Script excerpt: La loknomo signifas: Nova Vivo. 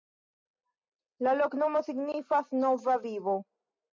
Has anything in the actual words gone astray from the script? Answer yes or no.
no